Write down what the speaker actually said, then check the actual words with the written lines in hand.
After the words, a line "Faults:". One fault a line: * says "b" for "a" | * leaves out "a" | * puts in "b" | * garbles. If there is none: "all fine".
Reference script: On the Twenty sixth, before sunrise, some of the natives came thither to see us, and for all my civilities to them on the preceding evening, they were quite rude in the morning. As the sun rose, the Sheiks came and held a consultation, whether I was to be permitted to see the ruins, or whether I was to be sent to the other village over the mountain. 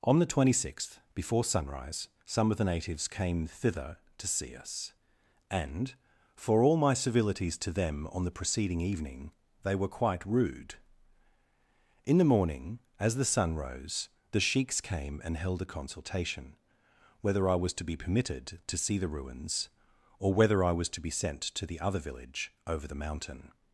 On the Twenty sixth, before sunrise, some of the natives came thither to see us, and for all my civilities to them on the preceding evening, they were quite rude in the morning. As the sun rose, the Sheiks came and held a consultation, whether I was to be permitted to see the ruins, or whether I was to be sent to the other village over the mountain.
Faults:
all fine